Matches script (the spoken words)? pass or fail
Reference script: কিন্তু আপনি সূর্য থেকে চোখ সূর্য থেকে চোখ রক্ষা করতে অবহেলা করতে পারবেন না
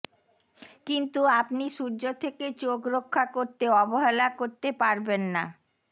fail